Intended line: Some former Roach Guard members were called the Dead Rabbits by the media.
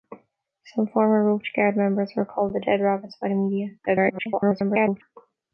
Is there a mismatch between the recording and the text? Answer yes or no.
yes